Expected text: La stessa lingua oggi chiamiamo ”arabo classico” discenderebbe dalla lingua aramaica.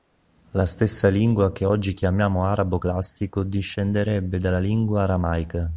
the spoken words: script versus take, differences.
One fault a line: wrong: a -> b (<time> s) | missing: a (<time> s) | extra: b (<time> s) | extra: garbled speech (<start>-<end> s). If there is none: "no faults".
extra: che (1.5 s)